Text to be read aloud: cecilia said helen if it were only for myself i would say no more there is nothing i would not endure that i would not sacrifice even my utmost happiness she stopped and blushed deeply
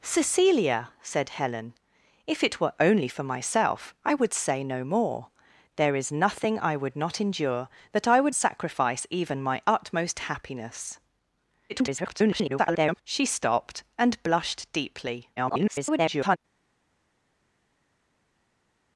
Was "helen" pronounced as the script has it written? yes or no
yes